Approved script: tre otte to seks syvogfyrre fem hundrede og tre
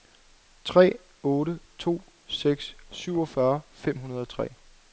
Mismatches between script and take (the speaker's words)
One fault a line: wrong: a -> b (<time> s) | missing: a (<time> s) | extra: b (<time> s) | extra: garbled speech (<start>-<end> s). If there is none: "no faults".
no faults